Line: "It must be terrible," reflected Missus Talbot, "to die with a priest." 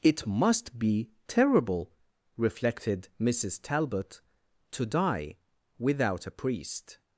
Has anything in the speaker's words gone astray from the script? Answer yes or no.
yes